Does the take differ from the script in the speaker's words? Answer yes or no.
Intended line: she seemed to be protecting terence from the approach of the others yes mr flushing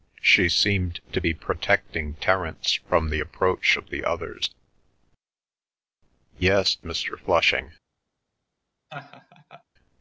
no